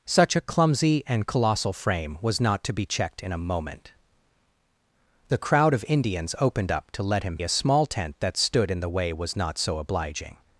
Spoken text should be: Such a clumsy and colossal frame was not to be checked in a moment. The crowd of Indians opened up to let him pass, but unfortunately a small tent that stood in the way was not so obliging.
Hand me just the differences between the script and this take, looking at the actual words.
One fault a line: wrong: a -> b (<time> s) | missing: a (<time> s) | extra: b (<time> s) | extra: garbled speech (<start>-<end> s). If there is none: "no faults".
missing: pass but unfortunately (7.4 s)